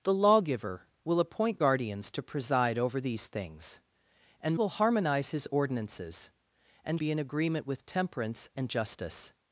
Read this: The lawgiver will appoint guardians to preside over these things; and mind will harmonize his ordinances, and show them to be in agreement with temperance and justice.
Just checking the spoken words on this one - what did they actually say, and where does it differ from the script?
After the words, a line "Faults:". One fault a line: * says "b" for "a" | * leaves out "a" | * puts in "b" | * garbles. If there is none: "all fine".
The lawgiver will appoint guardians to preside over these things; and will harmonize his ordinances, and be in agreement with temperance and justice.
Faults:
* leaves out "mind"
* leaves out "show them to"